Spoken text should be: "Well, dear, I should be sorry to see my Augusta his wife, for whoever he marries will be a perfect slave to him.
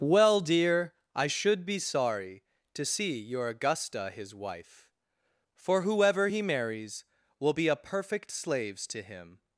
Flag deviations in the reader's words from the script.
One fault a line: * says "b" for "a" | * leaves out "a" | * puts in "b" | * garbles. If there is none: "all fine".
* says "your" for "my"
* says "slaves" for "slave"